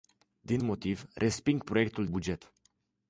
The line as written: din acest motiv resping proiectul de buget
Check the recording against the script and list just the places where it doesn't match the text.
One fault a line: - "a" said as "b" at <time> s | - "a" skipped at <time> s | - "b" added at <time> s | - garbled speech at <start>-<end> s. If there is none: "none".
- "acest" skipped at 0.6 s
- "de" skipped at 2.1 s